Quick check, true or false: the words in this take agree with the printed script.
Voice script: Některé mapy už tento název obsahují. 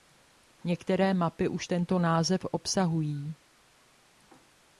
true